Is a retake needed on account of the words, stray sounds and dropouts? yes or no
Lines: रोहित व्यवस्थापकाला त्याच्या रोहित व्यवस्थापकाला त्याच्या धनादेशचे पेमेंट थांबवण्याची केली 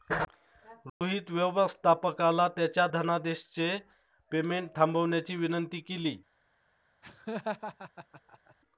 yes